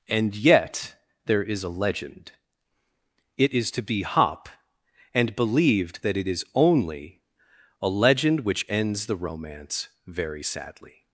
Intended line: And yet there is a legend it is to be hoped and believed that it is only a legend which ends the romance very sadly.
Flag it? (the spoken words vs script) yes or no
yes